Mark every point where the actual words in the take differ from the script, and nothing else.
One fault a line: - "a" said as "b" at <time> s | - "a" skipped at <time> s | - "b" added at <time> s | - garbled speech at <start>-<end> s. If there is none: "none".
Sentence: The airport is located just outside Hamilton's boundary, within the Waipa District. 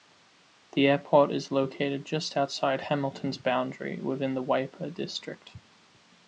none